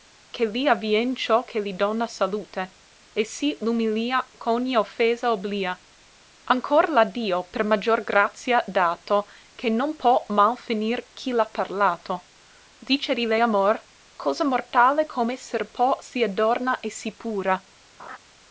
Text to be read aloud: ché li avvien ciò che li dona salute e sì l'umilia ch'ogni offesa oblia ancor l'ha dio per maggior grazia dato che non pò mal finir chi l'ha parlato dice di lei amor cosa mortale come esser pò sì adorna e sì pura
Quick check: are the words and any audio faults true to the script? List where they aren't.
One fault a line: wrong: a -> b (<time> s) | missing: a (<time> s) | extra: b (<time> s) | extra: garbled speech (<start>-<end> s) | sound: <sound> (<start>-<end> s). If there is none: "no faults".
sound: laugh (18.0-18.2 s)